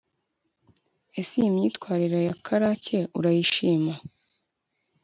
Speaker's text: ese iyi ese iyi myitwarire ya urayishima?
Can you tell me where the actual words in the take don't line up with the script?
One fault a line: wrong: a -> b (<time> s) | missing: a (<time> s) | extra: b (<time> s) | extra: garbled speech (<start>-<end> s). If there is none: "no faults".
missing: ese iyi (1.5 s)
extra: karake (2.5 s)